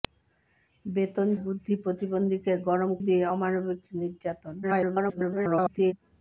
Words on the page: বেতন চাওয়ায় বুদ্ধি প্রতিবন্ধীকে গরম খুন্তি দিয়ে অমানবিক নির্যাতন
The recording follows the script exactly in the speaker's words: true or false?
false